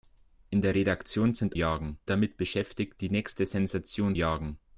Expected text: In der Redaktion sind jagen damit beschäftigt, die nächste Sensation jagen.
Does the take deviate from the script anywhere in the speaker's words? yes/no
no